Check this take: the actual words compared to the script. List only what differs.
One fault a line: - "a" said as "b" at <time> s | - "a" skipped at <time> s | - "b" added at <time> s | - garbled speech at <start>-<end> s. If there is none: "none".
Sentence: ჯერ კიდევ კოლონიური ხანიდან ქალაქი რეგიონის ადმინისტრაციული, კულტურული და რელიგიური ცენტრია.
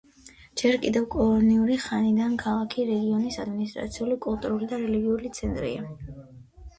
none